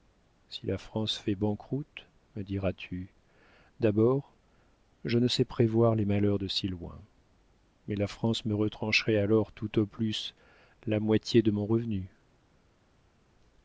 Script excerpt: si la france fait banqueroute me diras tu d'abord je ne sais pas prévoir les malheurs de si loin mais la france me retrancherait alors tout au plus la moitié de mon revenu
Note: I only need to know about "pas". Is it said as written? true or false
false